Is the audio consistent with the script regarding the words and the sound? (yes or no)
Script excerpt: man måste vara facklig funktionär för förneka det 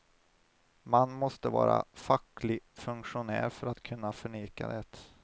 no